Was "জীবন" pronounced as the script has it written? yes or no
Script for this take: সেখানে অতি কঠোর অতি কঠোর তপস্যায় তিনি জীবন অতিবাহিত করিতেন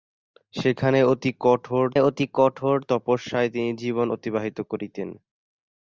yes